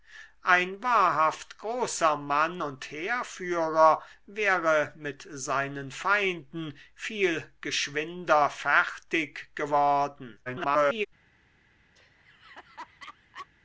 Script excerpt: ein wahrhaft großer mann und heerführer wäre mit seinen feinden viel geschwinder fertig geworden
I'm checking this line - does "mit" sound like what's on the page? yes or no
yes